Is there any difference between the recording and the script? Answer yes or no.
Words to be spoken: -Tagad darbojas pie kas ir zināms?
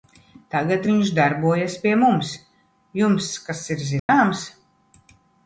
yes